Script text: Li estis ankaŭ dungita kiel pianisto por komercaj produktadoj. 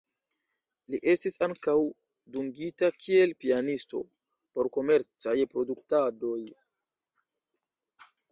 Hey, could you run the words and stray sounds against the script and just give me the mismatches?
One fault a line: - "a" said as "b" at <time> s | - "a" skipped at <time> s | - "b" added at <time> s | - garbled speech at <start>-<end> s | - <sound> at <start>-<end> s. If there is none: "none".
none